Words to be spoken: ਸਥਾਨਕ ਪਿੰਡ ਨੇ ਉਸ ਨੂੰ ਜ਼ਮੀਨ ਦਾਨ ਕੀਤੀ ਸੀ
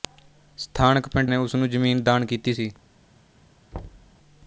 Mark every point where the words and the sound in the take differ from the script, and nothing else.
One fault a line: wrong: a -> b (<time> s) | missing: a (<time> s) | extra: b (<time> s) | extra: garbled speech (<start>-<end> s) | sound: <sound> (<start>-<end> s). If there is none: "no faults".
sound: thud (3.7-4.2 s)